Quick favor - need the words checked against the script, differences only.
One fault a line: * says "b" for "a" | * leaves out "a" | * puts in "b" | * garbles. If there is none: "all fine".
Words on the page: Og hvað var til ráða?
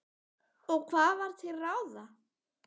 all fine